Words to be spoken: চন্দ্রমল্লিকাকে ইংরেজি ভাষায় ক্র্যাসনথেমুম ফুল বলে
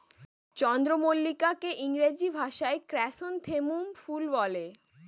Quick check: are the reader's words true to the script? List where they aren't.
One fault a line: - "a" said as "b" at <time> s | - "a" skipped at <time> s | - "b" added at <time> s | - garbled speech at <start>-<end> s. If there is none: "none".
none